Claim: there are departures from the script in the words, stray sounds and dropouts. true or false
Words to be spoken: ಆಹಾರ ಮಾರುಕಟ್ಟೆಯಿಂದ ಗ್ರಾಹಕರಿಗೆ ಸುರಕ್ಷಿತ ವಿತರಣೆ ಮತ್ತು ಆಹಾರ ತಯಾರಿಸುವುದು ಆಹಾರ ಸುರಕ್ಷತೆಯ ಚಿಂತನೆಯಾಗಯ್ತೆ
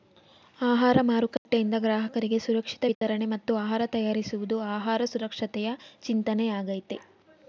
true